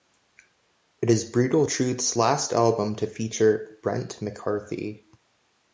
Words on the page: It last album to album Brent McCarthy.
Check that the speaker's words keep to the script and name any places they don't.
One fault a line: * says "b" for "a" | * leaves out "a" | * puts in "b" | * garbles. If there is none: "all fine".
* puts in "is Brutal Truth's"
* says "feature" for "album"